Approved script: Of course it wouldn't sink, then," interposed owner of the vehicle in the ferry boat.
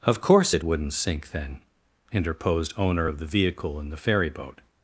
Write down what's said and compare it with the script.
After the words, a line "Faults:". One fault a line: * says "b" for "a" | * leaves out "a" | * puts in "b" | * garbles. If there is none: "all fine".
Of course it wouldn't sink, then," interposed owner of the vehicle in the ferry boat.
Faults:
all fine